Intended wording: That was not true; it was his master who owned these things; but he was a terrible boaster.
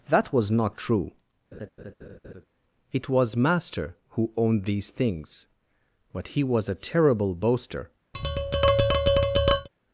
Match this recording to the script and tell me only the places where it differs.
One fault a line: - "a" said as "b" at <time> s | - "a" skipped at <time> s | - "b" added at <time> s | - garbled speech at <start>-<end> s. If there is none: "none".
- "his" skipped at 3.4 s